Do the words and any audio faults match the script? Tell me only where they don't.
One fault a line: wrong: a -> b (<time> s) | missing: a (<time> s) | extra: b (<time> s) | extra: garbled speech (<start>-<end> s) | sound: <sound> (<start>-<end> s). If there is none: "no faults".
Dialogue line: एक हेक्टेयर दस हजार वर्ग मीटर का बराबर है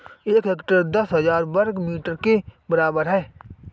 wrong: का -> के (2.2 s)